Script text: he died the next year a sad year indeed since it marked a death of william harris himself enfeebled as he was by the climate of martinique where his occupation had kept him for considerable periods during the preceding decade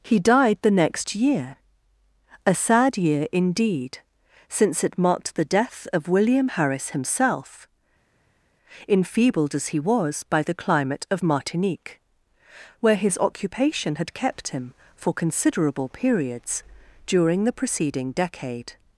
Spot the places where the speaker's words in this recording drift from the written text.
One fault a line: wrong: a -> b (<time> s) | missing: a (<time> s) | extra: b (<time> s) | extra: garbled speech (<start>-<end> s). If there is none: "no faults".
wrong: a -> the (5.3 s)